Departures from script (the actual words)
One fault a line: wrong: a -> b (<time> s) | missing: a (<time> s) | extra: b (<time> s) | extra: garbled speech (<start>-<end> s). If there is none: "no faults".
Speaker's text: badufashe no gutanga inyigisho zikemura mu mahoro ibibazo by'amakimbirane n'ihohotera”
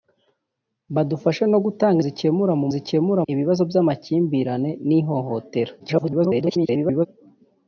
missing: inyigisho (2.0 s)
wrong: mahoro -> zikemura (2.7 s)
extra: garbled speech (5.8-7.1 s)